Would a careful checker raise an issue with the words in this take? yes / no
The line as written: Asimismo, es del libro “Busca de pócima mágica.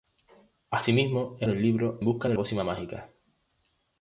no